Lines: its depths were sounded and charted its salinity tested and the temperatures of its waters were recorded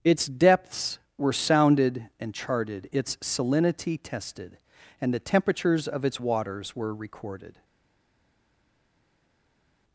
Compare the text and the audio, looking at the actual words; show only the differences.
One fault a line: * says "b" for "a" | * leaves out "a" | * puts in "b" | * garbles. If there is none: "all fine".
all fine